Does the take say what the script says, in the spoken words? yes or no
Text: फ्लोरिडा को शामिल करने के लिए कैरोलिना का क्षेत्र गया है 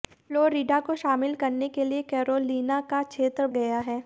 yes